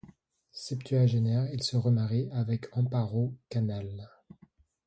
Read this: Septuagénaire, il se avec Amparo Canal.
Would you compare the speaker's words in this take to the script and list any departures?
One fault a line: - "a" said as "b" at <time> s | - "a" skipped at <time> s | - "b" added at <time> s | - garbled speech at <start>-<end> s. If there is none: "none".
- "remarie" added at 1.8 s